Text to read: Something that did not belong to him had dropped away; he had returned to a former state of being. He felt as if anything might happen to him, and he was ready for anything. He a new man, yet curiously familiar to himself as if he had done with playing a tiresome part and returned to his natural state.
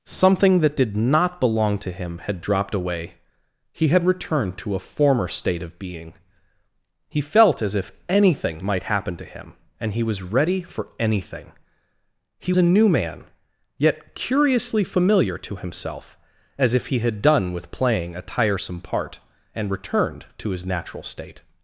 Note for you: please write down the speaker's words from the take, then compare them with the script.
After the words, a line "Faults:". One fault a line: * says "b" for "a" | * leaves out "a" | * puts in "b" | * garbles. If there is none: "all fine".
Something that did not belong to him had dropped away; he had returned to a former state of being. He felt as if anything might happen to him, and he was ready for anything. He a new man, yet curiously familiar to himself as if he had done with playing a tiresome part and returned to his natural state.
Faults:
all fine